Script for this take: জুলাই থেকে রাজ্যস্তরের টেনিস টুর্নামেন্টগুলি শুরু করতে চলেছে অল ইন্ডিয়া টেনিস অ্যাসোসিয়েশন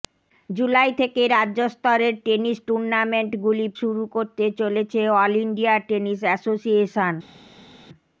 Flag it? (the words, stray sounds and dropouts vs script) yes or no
no